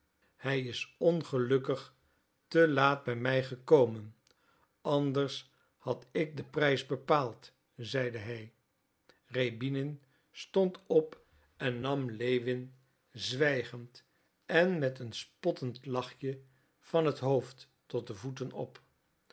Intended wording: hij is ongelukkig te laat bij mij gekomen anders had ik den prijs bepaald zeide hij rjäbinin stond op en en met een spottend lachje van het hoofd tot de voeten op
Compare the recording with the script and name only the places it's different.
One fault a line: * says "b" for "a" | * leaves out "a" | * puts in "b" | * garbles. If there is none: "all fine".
* puts in "nam lewin zwijgend"